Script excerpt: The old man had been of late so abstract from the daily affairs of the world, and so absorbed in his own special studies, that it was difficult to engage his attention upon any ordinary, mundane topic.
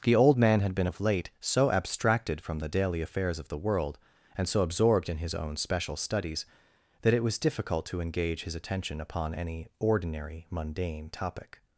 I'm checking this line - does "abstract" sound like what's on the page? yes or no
no